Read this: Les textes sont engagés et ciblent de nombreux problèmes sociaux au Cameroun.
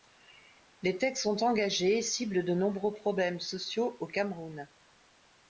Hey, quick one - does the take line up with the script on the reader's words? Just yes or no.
yes